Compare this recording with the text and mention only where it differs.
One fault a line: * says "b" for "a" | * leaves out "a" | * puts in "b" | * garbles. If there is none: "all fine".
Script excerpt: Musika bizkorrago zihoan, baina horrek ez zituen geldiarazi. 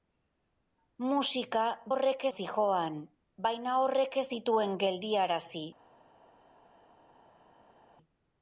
* says "horrek" for "bizkorrago"